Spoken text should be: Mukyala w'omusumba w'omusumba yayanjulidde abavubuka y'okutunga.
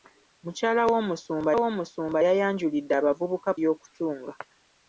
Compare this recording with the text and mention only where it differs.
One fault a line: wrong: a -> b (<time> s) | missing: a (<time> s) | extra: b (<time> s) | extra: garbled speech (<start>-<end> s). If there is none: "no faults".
no faults